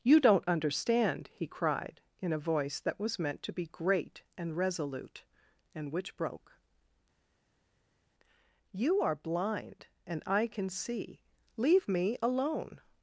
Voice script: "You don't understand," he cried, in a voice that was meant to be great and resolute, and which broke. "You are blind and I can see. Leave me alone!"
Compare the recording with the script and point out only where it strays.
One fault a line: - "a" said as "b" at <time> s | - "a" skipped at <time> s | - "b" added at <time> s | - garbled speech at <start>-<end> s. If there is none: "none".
none